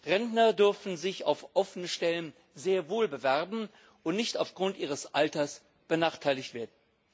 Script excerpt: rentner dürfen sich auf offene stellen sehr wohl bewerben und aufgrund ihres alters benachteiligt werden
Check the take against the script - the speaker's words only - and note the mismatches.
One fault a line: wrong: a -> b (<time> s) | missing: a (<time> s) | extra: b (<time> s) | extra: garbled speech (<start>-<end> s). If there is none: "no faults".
extra: nicht (4.2 s)